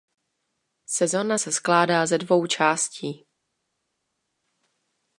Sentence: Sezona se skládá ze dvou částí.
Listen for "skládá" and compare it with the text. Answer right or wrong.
right